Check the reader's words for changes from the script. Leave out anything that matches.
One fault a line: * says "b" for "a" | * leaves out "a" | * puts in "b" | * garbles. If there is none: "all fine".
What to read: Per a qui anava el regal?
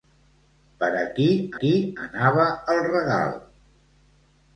* puts in "qui"